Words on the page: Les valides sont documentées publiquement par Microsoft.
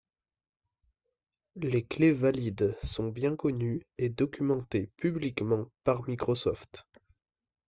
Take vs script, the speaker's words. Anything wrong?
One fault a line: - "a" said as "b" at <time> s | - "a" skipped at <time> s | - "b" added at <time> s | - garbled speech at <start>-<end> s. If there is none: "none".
- "clés" added at 1.9 s
- "bien connues et" added at 3.1 s